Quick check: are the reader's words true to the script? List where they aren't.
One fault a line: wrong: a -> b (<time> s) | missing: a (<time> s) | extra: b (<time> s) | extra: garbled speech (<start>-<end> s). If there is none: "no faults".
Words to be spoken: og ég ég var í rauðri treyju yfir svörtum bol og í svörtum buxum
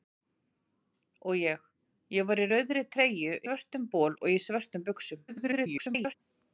missing: yfir (3.4 s)
extra: garbled speech (5.3-6.1 s)